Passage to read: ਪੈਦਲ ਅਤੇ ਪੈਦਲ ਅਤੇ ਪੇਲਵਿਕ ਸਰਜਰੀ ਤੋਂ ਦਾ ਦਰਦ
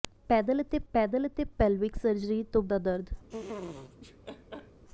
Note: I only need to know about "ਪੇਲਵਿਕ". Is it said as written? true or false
true